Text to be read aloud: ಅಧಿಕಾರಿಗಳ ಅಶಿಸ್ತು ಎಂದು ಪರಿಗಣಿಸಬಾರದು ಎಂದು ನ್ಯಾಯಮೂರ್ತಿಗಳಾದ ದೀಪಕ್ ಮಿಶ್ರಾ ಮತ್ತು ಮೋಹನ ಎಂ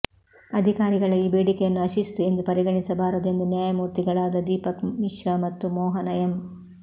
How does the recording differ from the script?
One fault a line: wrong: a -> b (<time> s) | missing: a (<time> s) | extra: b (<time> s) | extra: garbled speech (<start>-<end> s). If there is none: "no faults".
extra: ಈ ಬೇಡಿಕೆಯನ್ನು (1.1 s)